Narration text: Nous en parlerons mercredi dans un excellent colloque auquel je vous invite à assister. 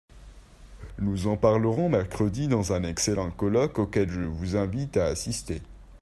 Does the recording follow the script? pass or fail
pass